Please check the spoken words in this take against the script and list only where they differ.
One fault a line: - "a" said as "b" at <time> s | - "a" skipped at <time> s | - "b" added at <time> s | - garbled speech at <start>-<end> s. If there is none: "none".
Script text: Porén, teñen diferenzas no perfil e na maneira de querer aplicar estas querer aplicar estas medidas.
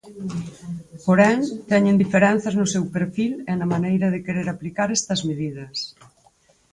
- "seu" added at 2.7 s
- "querer aplicar estas" skipped at 5.2 s